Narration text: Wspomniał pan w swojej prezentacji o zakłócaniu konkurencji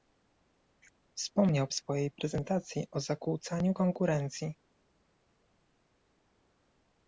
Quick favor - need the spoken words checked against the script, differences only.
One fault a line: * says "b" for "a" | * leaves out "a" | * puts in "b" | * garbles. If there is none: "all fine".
* leaves out "pan"